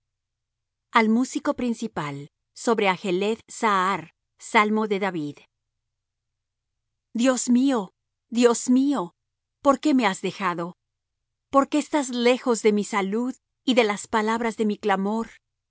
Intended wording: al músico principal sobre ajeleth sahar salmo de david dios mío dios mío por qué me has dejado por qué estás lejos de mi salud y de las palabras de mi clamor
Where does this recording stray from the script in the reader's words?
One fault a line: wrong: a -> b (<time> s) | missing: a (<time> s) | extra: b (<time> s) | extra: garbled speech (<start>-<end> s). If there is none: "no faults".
no faults